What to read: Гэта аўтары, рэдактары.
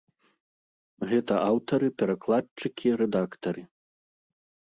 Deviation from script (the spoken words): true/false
true